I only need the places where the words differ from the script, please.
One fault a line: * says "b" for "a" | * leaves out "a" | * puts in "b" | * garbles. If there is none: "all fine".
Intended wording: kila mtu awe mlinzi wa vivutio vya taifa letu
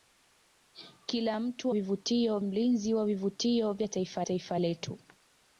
* says "vivutio" for "awe"
* puts in "taifa"